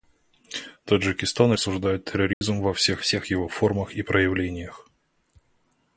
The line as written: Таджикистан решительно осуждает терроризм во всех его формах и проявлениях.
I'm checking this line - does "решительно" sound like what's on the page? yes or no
no